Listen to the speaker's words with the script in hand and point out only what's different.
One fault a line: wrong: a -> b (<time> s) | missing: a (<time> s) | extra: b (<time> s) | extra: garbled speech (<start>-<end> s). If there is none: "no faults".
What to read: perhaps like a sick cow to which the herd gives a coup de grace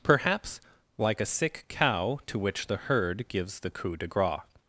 wrong: a -> the (3.6 s)